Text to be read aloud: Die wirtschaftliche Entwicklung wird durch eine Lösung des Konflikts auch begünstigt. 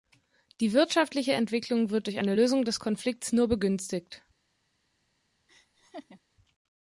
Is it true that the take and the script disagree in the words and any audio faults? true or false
true